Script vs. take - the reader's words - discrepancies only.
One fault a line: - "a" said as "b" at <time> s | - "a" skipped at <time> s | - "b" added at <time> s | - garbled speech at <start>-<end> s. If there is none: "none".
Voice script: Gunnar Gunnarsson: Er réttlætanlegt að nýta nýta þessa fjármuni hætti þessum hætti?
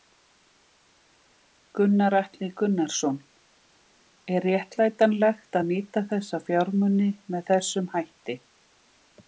- "Atli" added at 2.2 s
- "nýta" skipped at 6.1 s
- "hætti" said as "með" at 7.4 s